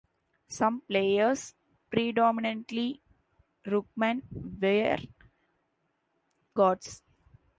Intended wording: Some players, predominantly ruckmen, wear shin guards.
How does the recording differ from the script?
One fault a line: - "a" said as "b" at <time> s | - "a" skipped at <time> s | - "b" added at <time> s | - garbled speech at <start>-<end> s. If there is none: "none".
- "shin" skipped at 5.0 s